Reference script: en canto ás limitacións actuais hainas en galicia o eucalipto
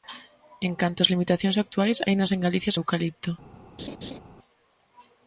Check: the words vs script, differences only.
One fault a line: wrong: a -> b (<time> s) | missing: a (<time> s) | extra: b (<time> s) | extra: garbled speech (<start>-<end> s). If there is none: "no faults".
no faults